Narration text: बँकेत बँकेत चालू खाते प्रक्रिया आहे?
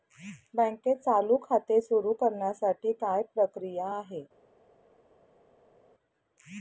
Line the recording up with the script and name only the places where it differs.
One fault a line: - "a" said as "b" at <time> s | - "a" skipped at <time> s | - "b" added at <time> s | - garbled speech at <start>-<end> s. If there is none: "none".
- "बँकेत" skipped at 1.0 s
- "सुरु करण्यासाठी काय" added at 1.8 s